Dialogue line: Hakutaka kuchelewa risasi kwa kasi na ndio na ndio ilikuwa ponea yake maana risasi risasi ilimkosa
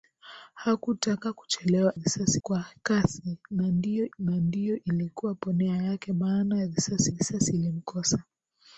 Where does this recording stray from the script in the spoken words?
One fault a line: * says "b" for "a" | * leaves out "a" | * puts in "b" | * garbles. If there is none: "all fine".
all fine